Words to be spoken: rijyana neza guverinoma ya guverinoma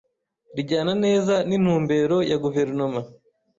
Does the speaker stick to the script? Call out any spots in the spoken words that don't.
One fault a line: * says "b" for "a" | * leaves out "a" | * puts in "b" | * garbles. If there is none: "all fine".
* says "n'intumbero" for "guverinoma"